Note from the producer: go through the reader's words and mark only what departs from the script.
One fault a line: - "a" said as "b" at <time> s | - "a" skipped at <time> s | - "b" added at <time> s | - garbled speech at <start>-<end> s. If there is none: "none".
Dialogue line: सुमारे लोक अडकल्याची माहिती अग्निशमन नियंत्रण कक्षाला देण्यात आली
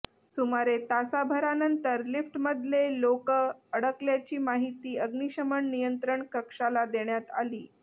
- "तासाभरानंतर लिफ्टमधले" added at 0.8 s